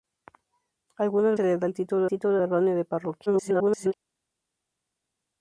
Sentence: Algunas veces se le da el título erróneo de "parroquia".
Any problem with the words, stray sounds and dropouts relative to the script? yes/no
yes